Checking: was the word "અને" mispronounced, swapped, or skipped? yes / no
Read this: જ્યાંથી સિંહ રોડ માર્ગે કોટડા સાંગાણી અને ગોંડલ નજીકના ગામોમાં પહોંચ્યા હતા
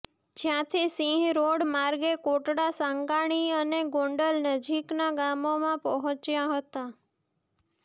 no